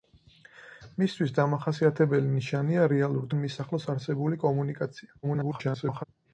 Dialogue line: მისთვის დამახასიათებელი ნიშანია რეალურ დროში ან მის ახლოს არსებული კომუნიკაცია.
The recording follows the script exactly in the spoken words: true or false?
false